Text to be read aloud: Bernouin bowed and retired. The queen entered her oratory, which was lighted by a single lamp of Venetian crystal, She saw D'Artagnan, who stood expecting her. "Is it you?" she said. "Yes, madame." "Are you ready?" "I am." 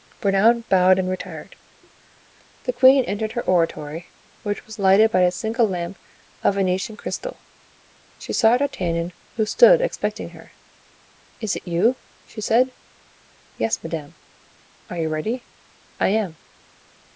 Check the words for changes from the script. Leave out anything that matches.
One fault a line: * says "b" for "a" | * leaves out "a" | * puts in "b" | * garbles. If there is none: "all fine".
all fine